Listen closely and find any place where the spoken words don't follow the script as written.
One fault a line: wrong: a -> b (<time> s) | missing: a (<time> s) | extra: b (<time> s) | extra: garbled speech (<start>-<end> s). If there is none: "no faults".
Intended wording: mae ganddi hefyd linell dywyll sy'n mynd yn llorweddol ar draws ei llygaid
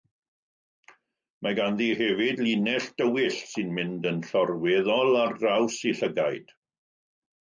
no faults